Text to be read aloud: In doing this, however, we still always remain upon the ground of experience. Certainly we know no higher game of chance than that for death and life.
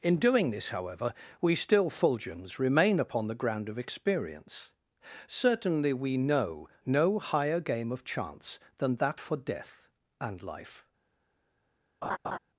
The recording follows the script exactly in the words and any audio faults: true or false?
false